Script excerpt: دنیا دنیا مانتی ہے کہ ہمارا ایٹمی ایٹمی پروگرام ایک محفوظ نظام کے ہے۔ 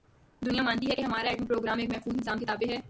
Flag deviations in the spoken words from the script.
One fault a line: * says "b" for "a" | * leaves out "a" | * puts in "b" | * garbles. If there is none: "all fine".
* leaves out "دنیا"
* leaves out "ایٹمی"
* puts in "تابع"